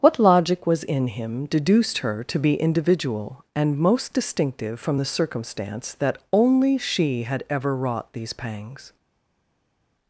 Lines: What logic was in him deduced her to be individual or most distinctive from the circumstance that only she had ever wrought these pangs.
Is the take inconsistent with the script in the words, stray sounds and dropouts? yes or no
yes